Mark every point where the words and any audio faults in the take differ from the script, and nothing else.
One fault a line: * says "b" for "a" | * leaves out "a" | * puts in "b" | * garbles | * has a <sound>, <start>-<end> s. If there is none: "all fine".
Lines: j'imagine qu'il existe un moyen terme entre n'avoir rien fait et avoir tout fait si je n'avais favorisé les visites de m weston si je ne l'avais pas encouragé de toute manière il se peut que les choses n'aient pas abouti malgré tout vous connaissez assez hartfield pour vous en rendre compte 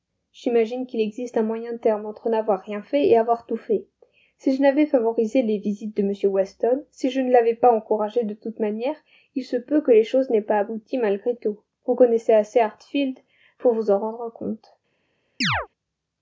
* has a chirp, 15.4-15.7 s